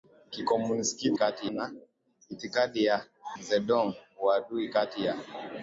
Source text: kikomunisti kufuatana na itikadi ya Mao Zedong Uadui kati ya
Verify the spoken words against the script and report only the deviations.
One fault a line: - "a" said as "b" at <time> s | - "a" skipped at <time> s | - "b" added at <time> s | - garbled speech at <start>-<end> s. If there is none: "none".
- "kufuatana" said as "kati" at 1.1 s
- "Mao" skipped at 3.1 s